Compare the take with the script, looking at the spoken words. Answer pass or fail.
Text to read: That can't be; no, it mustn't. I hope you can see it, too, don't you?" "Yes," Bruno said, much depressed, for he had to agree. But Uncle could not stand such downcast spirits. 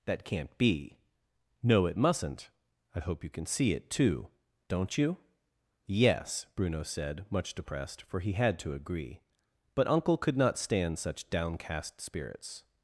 pass